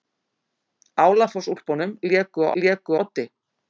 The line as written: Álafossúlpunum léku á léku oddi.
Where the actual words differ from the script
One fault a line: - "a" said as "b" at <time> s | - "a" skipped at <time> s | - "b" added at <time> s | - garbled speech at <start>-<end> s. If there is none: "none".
none